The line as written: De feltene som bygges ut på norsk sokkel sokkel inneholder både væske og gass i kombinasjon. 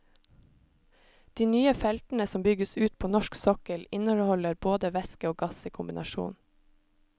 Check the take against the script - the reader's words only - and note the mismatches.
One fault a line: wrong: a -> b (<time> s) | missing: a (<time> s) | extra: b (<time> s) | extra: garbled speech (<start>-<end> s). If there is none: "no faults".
extra: nye (1.5 s)
missing: sokkel (3.9 s)